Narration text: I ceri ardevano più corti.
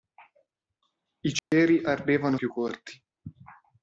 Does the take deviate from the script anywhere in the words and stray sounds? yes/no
yes